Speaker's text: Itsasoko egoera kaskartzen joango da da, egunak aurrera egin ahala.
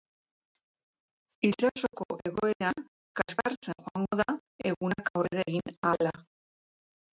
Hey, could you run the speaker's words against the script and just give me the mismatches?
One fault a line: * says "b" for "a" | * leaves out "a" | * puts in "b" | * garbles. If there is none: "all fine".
* leaves out "da"